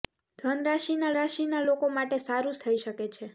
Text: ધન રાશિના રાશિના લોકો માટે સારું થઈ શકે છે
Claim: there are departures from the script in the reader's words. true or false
false